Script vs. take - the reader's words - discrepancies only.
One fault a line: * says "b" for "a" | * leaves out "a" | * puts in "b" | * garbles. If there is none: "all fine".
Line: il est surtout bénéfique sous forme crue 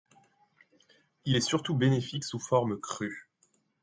all fine